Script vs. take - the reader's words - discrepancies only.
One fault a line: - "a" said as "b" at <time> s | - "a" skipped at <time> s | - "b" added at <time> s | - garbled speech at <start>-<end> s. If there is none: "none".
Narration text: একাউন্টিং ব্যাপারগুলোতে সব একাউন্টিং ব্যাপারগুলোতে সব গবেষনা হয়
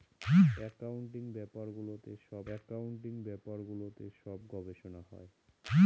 none